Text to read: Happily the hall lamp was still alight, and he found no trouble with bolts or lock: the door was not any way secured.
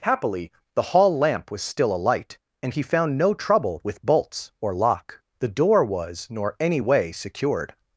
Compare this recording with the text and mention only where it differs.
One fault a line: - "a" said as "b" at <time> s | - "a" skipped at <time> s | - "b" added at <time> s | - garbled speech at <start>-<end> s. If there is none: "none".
- "not" said as "nor" at 6.3 s